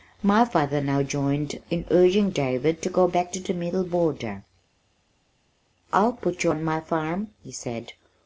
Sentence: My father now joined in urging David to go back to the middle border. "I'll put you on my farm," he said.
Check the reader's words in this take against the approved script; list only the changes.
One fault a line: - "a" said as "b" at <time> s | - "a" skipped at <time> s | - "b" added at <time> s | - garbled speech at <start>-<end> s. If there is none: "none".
none